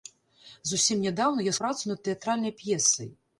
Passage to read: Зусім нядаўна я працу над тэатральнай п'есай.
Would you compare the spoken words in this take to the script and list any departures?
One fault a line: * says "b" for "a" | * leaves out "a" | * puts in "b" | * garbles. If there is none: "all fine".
all fine